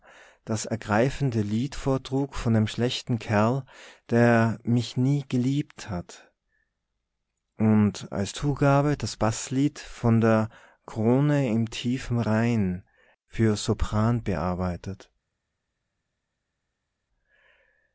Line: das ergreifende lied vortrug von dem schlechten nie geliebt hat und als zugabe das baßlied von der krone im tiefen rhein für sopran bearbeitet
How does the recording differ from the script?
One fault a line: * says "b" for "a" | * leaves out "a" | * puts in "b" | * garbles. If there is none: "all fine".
* puts in "kerl der mich"